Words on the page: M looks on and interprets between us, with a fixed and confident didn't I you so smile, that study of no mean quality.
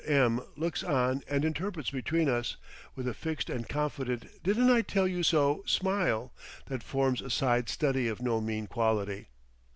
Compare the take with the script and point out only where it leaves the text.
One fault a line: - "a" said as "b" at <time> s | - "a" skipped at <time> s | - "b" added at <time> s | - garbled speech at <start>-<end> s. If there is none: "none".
- "tell" added at 4.8 s
- "forms a side" added at 6.8 s